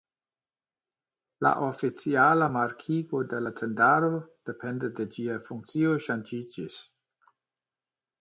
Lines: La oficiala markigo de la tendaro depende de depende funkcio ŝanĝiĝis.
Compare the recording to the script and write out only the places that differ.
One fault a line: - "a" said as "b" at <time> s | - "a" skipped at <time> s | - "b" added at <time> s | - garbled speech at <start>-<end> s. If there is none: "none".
- "depende" said as "ĝia" at 5.1 s